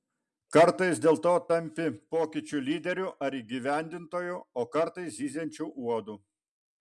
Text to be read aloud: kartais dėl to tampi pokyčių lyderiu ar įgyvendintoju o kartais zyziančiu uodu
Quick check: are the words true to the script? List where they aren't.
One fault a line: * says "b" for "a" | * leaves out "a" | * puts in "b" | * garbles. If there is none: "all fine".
all fine